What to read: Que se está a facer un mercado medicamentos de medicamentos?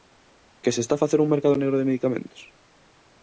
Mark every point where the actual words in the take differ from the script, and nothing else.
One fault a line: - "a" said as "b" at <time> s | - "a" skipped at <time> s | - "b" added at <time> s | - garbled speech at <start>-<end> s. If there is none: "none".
- "medicamentos" said as "negro" at 1.6 s